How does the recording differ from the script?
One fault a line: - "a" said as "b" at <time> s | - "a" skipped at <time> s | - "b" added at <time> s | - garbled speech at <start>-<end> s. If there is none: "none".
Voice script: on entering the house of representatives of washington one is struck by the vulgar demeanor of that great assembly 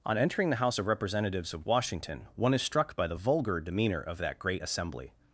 none